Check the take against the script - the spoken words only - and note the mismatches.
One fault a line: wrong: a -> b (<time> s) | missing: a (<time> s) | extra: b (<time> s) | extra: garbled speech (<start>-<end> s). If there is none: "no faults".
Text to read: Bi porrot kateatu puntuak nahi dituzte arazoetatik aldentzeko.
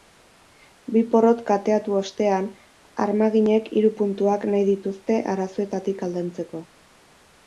extra: ostean armaginek hiru (2.0 s)